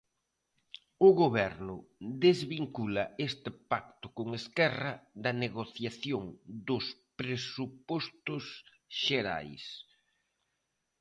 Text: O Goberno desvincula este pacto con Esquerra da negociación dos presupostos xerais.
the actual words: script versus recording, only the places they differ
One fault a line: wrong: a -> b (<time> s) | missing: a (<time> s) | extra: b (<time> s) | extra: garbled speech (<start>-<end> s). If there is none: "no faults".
no faults